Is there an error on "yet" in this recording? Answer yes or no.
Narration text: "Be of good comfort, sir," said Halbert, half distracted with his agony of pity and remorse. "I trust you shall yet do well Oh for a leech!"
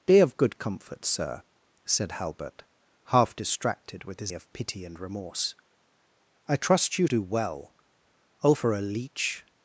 yes